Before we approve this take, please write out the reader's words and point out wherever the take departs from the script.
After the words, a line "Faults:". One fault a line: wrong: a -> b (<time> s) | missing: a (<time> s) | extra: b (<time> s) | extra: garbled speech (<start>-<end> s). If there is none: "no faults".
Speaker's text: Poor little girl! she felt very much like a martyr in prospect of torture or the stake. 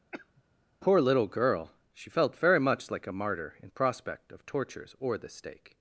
Poor little girl! she felt very much like a martyr in prospect of tortures or the stake.
Faults:
wrong: torture -> tortures (4.5 s)